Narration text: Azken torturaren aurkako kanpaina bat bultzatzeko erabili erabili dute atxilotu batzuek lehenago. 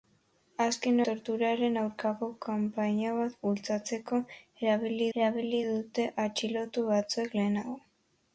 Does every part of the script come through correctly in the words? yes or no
yes